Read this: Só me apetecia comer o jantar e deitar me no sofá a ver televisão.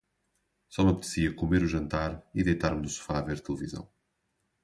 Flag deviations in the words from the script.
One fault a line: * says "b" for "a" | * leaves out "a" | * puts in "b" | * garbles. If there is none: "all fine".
all fine